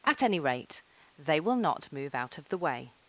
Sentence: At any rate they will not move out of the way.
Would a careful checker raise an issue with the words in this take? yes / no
no